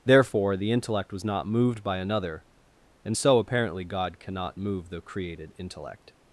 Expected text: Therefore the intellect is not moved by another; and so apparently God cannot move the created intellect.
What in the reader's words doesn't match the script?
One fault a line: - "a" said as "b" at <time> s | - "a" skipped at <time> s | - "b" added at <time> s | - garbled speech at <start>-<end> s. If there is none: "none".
- "is" said as "was" at 1.1 s